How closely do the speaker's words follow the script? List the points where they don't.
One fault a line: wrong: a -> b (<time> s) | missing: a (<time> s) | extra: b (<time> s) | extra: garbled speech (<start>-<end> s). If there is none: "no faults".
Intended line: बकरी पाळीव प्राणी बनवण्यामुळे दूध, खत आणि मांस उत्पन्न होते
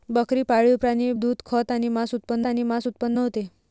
missing: बनवण्यामुळे (1.1 s)
extra: आणि मांस उत्पन्न (2.5 s)